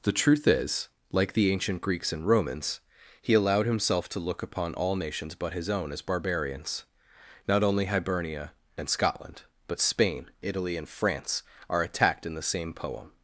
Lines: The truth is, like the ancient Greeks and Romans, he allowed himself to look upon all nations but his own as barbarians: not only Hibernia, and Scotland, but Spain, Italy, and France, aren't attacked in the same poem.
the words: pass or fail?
fail